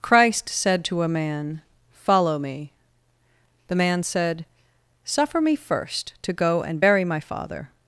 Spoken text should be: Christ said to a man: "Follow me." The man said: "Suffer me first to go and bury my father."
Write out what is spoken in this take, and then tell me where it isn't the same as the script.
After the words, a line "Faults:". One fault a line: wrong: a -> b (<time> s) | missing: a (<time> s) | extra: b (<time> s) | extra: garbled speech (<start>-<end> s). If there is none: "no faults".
Christ said to a man: "Follow me." The man said: "Suffer me first to go and bury my father."
Faults:
no faults